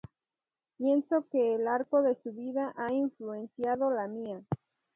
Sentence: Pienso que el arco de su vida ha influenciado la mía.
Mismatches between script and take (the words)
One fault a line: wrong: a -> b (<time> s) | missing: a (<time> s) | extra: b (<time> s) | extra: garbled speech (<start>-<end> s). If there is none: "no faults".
no faults